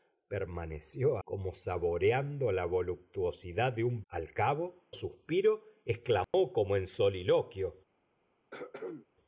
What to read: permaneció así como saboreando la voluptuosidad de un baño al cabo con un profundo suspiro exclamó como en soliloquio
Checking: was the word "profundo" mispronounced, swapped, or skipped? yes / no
yes